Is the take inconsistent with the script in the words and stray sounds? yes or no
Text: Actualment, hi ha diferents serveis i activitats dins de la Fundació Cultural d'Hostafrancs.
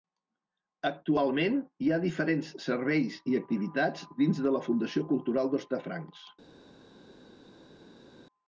no